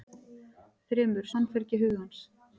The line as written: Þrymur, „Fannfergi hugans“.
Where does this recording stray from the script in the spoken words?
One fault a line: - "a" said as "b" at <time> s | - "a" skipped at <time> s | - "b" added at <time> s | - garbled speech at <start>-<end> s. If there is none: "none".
none